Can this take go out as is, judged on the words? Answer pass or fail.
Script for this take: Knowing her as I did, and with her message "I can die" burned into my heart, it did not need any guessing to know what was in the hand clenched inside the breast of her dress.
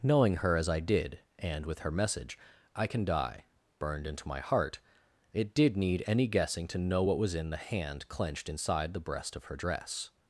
fail